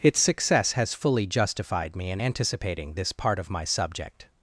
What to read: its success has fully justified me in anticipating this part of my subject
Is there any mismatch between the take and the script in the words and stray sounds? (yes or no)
no